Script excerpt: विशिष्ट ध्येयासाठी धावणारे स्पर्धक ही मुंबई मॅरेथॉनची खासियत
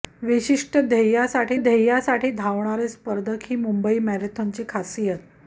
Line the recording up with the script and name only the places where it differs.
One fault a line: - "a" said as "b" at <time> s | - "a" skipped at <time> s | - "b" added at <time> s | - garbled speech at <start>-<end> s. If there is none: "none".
- "ध्येयासाठी" added at 1.5 s